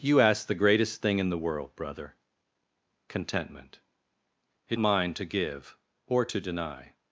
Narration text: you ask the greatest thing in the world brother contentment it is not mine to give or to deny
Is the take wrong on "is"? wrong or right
wrong